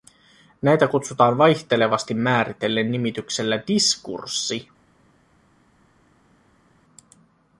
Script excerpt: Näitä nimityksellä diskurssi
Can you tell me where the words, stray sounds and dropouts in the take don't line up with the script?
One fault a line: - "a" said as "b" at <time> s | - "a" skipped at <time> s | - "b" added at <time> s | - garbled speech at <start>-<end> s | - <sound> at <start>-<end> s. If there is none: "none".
- "kutsutaan vaihtelevasti määritellen" added at 0.9 s